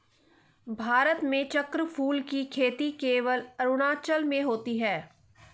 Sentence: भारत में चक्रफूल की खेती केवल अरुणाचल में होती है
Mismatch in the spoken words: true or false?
false